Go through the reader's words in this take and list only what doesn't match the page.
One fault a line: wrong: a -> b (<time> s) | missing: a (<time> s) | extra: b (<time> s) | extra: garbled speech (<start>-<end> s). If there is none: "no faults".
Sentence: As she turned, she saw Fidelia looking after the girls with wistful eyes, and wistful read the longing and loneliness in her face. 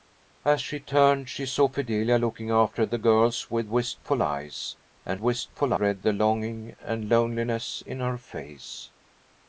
no faults